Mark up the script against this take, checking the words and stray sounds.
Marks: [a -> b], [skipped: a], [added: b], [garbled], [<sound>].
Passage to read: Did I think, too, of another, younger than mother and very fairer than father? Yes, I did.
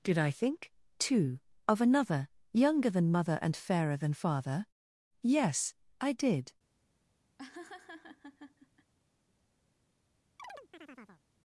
Did I think, too, of another, younger than mother and [skipped: very] fairer than father? Yes, I did. [laugh] [chirp]